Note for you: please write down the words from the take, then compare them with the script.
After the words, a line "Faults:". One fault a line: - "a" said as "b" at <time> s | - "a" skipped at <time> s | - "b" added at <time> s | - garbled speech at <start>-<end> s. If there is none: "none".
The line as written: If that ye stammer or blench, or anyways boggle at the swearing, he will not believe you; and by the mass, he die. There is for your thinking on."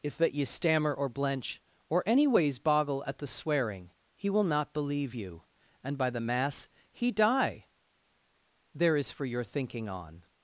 If that ye stammer or blench, or anyways boggle at the swearing, he will not believe you; and by the mass, he die. There is for your thinking on."
Faults:
none